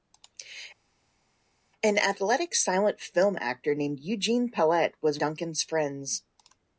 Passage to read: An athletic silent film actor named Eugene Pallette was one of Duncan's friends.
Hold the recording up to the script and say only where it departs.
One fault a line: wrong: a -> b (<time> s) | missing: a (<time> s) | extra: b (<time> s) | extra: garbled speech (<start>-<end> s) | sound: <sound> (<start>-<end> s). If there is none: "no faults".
missing: one of (5.2 s)